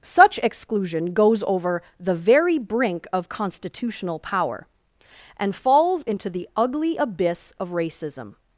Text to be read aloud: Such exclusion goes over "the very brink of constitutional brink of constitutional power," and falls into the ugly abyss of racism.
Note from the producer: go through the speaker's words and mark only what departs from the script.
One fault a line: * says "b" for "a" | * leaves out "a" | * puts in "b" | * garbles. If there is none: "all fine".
* leaves out "brink of constitutional"